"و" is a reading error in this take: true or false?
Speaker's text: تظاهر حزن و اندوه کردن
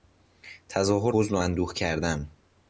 false